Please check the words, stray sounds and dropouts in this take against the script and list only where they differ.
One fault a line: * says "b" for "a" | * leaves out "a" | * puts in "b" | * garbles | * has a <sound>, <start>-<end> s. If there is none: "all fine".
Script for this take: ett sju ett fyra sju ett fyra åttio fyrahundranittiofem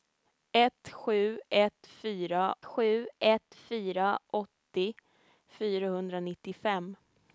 all fine